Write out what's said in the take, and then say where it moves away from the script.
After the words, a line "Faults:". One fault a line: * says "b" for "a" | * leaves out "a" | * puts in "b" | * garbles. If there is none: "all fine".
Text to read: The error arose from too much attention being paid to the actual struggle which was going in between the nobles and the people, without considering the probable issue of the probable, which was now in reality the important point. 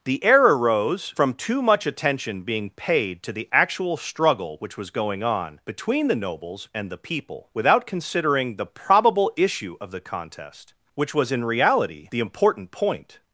The error arose from too much attention being paid to the actual struggle which was going on between the nobles and the people, without considering the probable issue of the contest, which was in reality the important point.
Faults:
* says "on" for "in"
* says "contest" for "probable"
* leaves out "now"